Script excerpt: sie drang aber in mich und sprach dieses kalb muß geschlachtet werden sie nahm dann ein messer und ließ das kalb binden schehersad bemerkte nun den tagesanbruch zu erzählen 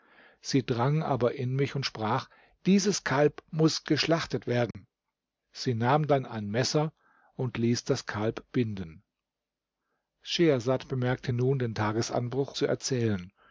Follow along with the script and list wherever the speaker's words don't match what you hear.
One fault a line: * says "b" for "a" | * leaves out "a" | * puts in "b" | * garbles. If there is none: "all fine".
all fine